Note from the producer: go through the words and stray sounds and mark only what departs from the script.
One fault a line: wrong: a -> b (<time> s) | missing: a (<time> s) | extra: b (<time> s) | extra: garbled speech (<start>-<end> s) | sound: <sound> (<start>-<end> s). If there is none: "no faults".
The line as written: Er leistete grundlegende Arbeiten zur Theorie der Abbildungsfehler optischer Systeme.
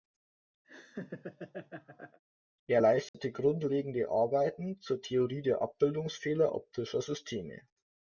sound: laugh (0.6-2.2 s)
sound: dropout (3.1-3.1 s)